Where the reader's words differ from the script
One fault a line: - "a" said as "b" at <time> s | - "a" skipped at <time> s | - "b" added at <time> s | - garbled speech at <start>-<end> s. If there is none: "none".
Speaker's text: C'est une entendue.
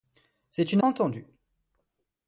none